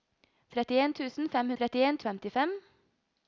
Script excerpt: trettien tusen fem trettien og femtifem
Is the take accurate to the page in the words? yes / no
yes